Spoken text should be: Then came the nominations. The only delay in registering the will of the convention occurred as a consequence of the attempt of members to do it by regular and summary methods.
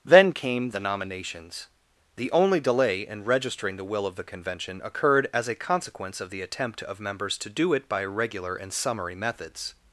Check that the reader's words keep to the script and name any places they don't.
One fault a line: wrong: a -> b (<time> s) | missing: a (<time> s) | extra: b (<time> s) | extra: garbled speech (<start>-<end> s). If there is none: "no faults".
no faults